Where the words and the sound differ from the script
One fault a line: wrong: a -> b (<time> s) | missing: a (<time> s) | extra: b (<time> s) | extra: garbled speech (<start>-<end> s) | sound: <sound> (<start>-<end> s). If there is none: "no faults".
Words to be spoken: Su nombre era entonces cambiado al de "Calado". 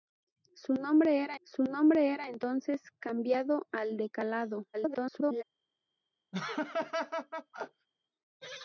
extra: su nombre era (1.4 s)
extra: garbled speech (4.7-5.4 s)
sound: laugh (6.3-7.9 s)